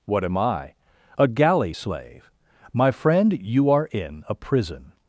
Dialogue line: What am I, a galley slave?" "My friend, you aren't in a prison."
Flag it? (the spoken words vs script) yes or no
yes